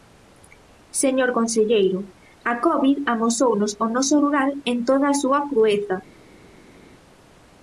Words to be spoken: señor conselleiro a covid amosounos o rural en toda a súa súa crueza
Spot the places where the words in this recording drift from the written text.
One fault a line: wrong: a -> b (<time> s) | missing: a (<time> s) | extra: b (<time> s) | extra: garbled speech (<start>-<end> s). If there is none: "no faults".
extra: noso (3.9 s)
missing: súa (5.4 s)